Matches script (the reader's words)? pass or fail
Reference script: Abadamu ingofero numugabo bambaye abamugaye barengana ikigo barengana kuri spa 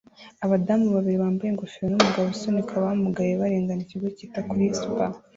fail